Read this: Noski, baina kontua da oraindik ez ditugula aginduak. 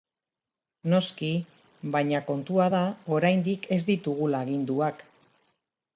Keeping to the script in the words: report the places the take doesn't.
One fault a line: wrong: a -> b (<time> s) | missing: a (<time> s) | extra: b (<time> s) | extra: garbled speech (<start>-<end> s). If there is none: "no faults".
no faults